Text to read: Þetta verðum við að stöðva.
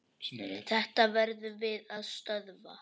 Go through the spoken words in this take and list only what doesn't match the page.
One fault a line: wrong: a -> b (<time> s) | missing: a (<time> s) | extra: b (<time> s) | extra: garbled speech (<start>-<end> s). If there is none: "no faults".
no faults